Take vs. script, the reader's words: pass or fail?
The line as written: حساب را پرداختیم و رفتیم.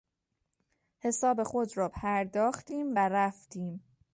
fail